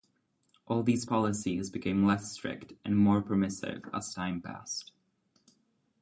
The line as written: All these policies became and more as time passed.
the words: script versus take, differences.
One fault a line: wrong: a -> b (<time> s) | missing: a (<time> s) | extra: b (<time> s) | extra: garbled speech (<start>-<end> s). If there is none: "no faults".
extra: less strict (2.0 s)
extra: permissive (3.2 s)